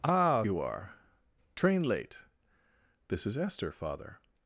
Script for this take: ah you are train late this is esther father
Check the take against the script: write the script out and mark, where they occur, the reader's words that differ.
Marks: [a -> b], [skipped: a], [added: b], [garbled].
ah you are train late this is esther father